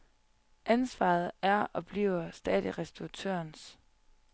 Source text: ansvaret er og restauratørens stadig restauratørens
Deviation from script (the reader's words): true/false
true